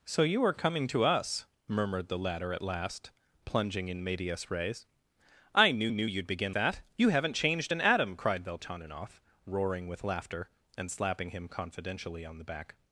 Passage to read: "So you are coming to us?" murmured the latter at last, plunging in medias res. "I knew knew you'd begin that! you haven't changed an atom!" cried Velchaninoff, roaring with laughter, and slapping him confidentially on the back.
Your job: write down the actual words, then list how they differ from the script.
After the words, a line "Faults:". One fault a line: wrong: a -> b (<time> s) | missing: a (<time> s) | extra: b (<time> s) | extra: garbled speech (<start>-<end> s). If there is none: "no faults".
"So you are coming to us?" murmured the latter at last, plunging in medias res. "I knew knew you'd begin that! you haven't changed an atom!" cried Velchaninoff, roaring with laughter, and slapping him confidentially on the back.
Faults:
no faults